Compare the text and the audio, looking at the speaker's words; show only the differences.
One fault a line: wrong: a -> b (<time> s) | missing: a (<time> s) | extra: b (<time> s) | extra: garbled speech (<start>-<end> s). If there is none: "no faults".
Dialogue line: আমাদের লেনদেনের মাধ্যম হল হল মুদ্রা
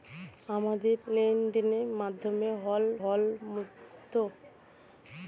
no faults